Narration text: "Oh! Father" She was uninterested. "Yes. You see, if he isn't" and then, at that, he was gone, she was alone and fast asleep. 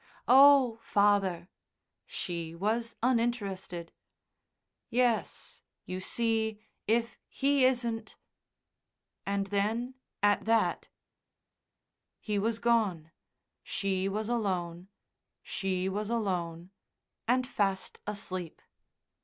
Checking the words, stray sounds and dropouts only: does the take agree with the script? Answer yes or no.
no